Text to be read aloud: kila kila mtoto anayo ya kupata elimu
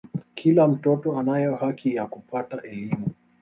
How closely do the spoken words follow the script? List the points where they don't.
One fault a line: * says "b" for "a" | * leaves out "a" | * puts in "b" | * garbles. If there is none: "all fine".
* leaves out "kila"
* puts in "haki"